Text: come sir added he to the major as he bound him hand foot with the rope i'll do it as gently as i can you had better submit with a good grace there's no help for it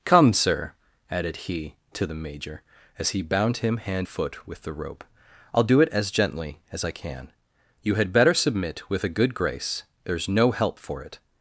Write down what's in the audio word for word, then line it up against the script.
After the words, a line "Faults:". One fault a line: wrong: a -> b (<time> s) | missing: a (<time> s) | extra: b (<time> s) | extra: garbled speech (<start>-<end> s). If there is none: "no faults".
come sir added he to the major as he bound him hand foot with the rope i'll do it as gently as i can you had better submit with a good grace there's no help for it
Faults:
no faults